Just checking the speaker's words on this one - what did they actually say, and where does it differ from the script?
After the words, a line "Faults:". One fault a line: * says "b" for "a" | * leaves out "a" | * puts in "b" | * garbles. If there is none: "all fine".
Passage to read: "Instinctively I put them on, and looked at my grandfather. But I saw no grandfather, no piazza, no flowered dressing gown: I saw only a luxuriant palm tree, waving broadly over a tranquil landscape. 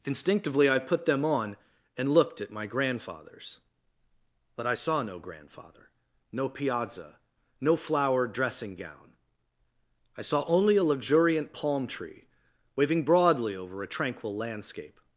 "Instinctively I put them on, and looked at my grandfathers. But I saw no grandfather, no piazza, no flowered dressing gown: I saw only a luxuriant palm tree, waving broadly over a tranquil landscape.
Faults:
* says "grandfathers" for "grandfather"